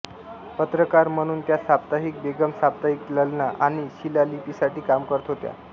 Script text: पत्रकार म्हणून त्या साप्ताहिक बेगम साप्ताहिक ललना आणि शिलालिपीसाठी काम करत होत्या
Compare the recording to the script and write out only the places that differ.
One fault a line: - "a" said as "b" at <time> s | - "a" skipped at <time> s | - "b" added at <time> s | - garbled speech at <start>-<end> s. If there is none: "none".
none